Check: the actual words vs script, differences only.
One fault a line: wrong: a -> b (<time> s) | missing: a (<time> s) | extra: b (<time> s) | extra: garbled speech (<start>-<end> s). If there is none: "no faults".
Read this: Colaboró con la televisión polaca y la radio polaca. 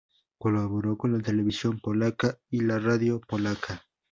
no faults